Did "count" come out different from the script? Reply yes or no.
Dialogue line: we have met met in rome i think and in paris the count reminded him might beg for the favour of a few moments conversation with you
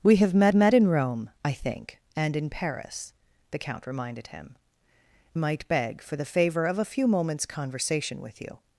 no